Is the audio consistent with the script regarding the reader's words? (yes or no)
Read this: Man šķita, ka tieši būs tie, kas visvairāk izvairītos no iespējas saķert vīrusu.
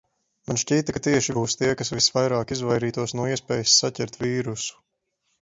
yes